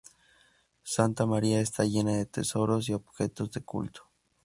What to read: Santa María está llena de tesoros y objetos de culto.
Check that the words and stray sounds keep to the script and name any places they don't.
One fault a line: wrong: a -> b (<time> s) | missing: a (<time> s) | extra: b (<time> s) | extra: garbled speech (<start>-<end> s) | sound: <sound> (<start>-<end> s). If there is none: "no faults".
no faults